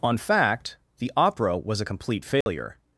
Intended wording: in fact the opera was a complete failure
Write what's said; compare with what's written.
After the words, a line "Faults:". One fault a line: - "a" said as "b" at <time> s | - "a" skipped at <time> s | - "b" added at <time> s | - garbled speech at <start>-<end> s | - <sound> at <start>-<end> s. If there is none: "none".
on fact the opera was a complete failure
Faults:
- "in" said as "on" at 0.0 s
- dropout at 2.4-2.5 s